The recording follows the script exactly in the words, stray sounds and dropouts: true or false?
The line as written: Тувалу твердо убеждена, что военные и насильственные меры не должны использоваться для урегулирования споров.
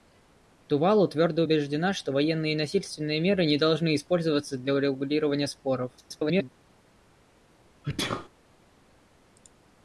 false